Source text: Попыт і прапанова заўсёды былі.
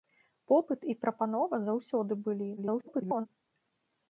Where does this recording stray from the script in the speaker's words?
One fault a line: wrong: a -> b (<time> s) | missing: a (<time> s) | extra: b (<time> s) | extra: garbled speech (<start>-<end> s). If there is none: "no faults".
extra: garbled speech (2.6-3.3 s)